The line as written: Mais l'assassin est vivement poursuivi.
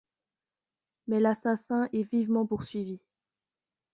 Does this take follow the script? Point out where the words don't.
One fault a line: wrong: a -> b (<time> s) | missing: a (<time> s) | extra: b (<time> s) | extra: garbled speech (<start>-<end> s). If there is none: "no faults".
no faults